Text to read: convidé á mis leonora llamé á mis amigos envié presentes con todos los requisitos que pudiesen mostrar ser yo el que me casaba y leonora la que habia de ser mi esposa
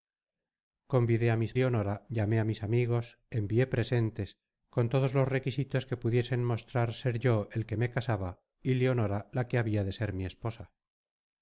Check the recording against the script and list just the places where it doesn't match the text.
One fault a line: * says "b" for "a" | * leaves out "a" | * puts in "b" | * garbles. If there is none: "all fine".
all fine